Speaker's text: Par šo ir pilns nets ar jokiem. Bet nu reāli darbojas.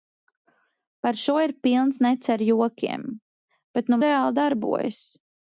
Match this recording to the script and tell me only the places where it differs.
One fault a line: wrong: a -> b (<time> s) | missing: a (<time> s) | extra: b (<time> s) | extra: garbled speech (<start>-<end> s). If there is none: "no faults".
no faults